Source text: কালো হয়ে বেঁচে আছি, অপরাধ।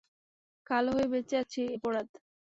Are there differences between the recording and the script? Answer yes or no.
no